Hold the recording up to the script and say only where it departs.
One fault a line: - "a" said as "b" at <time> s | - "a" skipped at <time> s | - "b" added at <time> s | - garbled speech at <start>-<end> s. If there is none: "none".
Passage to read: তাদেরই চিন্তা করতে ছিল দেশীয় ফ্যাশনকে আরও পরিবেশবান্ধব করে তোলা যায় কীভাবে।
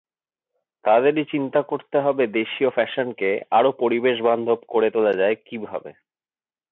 - "ছিল" said as "হবে" at 2.0 s